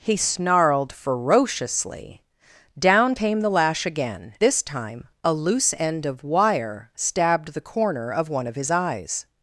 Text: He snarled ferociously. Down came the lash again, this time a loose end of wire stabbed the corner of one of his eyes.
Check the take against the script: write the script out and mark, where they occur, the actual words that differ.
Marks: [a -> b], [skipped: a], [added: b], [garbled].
He snarled ferociously. Down came the lash again, this time a loose end of wire stabbed the corner of one of his eyes.